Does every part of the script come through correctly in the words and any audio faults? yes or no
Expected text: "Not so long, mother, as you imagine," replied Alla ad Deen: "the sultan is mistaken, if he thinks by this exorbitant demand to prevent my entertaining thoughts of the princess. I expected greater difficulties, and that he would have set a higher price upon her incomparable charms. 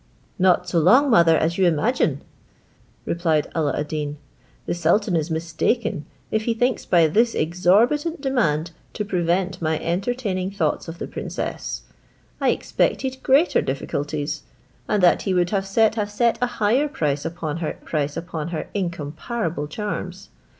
no